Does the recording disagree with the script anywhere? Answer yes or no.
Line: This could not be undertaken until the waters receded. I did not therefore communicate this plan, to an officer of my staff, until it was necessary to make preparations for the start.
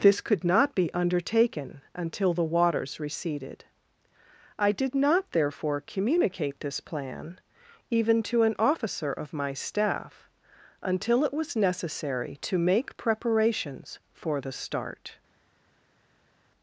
yes